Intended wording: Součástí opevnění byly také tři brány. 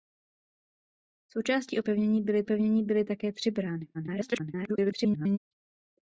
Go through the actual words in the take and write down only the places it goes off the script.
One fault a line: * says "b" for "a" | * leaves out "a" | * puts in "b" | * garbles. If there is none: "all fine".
* puts in "opevnění byly"
* garbles